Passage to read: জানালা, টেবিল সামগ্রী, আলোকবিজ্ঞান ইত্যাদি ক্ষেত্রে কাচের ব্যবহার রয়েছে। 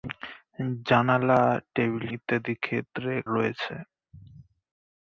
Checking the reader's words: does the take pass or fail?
fail